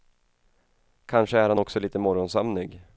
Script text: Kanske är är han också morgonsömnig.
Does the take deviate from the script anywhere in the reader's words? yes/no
yes